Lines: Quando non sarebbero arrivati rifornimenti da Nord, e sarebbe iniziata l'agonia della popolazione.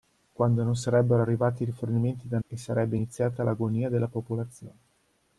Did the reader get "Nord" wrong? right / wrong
wrong